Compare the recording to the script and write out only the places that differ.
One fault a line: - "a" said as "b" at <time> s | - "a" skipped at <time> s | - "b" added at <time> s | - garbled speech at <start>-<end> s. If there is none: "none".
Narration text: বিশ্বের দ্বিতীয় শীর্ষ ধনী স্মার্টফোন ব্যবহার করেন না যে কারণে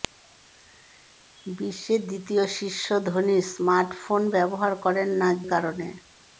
- "যে" skipped at 5.3 s